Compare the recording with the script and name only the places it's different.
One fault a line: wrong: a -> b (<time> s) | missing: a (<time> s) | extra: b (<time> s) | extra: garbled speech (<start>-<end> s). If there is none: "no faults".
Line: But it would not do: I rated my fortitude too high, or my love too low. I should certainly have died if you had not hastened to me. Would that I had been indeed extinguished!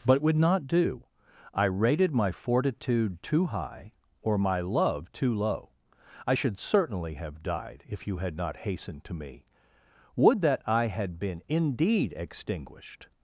missing: it (0.2 s)